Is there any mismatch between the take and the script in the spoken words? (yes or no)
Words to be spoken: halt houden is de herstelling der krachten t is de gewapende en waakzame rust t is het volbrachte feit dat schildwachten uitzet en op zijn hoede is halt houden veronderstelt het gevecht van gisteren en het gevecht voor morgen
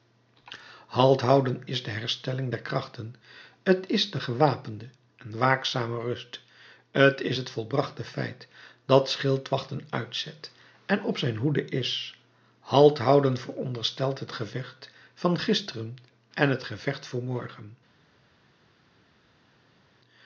no